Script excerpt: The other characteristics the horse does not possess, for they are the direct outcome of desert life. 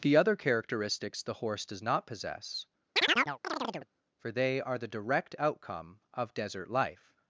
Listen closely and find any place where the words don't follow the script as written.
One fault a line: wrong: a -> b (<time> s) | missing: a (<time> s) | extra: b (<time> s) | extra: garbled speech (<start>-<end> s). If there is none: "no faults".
no faults